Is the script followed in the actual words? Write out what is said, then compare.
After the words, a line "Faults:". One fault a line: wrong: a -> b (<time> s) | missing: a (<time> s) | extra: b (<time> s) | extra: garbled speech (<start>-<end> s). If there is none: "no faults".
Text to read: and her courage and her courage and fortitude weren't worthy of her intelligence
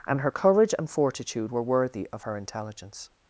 and her courage and fortitude were worthy of her intelligence
Faults:
missing: her courage and (0.9 s)
wrong: weren't -> were (1.5 s)